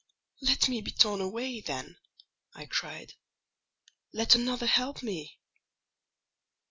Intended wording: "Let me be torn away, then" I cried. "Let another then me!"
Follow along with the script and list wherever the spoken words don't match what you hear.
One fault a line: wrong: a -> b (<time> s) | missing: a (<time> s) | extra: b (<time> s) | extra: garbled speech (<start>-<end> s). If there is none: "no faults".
wrong: then -> help (4.7 s)